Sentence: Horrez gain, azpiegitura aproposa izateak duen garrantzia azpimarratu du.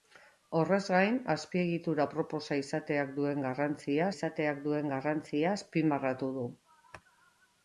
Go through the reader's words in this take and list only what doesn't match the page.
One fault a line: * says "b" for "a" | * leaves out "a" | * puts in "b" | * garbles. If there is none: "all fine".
* puts in "izateak duen garrantzia"